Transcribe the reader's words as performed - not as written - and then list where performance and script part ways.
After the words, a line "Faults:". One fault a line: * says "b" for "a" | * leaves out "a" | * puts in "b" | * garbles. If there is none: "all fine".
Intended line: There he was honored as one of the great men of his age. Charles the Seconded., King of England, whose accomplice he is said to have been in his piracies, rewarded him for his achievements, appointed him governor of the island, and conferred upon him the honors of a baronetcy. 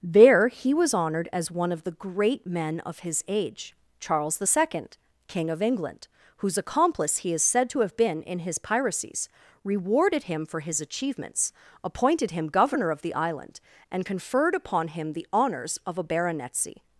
There he was honored as one of the great men of his age. Charles the Second., King of England, whose accomplice he is said to have been in his piracies, rewarded him for his achievements, appointed him governor of the island, and conferred upon him the honors of a baronetcy.
Faults:
* says "Second" for "Seconded"